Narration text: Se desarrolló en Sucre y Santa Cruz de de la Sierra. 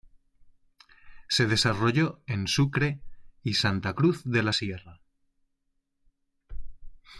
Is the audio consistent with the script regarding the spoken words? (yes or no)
no